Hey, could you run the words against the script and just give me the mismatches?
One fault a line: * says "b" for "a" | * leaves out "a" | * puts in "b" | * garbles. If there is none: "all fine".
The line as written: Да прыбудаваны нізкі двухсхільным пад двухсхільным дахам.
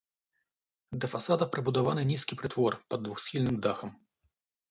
* puts in "фасада"
* says "прытвор" for "двухсхільным"